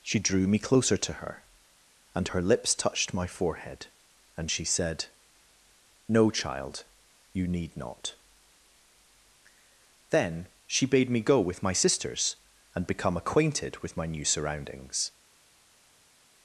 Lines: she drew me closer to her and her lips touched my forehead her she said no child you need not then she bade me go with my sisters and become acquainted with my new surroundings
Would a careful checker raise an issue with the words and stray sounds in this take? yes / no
yes